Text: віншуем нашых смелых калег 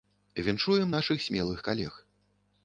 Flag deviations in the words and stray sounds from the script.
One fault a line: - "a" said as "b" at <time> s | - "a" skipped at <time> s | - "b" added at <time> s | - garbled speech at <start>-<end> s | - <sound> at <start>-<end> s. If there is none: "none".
none